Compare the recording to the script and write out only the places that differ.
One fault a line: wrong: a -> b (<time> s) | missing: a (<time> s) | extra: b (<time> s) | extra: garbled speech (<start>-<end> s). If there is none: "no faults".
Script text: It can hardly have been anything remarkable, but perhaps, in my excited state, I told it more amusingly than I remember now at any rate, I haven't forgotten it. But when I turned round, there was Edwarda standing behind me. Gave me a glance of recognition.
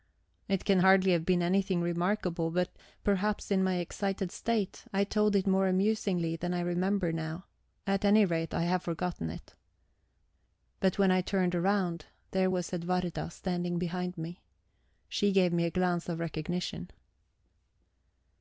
wrong: haven't -> have (8.6 s)
extra: She (15.1 s)